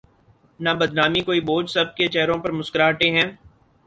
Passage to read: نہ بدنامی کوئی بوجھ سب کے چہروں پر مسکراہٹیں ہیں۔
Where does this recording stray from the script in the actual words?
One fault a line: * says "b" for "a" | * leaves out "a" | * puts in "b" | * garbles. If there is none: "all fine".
all fine